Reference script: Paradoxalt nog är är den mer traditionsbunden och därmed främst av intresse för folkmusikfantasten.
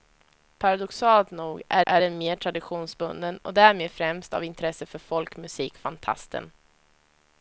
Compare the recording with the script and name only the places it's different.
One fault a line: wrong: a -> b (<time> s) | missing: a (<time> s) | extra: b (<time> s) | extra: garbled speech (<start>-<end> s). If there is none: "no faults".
no faults